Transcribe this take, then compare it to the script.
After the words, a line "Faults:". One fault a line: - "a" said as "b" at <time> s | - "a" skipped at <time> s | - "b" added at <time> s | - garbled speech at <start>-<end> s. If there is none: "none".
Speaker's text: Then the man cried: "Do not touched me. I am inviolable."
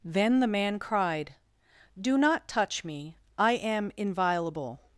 Then the man cried: "Do not touch me. I am inviolable."
Faults:
- "touched" said as "touch" at 2.5 s